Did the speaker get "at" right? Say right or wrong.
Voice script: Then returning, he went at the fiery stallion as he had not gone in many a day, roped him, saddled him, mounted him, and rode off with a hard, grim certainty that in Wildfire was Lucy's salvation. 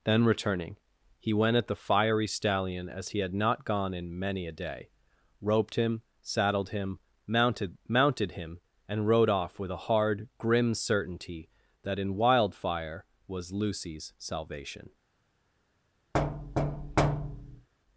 right